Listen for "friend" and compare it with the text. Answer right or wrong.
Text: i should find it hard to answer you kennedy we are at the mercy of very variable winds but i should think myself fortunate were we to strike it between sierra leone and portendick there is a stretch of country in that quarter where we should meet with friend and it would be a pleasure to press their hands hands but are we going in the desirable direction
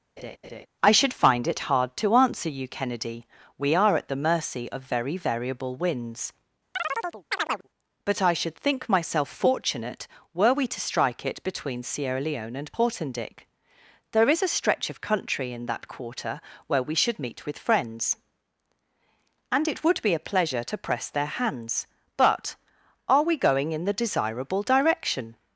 wrong